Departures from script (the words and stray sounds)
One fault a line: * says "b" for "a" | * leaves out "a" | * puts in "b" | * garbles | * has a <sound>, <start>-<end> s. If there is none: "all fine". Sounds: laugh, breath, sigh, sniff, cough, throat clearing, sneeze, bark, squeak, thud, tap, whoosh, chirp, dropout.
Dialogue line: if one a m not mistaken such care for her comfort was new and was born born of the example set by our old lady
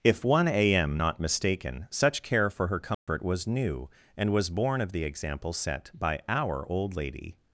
* has a dropout, 2.9-3.1 s
* leaves out "born"